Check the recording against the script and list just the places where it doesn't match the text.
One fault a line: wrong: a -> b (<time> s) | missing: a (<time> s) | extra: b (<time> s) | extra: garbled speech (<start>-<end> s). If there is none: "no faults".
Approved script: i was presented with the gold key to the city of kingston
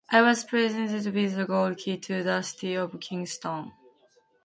no faults